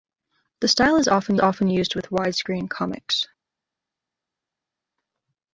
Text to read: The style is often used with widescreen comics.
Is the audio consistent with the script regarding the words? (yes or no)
no